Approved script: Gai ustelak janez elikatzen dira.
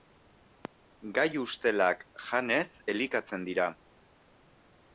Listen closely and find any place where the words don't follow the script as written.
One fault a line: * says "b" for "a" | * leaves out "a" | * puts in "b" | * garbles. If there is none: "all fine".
all fine